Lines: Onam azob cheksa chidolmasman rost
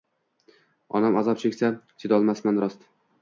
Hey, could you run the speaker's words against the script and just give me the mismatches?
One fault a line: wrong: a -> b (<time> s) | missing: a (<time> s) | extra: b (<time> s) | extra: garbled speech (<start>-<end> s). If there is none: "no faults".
no faults